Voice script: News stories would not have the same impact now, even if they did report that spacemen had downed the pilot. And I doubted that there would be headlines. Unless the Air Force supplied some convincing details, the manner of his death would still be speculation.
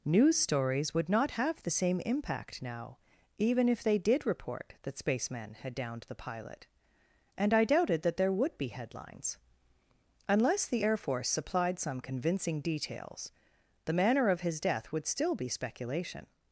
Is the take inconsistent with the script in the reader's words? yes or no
no